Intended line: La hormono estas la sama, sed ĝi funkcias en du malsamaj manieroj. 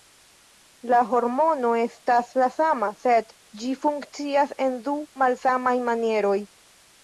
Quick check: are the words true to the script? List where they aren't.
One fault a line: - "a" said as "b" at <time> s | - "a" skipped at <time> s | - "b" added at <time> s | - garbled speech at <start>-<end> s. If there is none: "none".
none